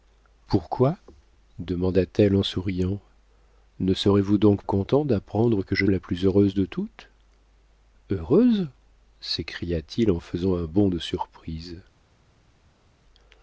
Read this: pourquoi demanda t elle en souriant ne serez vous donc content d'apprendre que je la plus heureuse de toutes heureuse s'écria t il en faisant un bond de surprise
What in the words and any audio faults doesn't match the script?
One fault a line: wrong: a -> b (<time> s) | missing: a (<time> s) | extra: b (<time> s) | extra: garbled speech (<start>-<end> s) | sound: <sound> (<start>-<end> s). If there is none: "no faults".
no faults